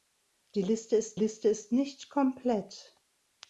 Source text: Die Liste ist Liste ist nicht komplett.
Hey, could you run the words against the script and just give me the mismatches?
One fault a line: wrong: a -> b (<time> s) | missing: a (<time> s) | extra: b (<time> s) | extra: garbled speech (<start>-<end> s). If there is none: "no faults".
no faults